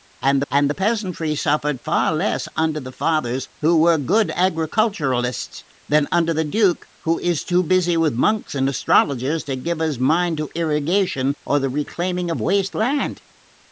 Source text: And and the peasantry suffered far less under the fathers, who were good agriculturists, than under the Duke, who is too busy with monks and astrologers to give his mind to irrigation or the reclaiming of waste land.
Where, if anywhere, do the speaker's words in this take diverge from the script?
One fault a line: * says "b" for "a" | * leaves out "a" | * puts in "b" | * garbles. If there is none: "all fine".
all fine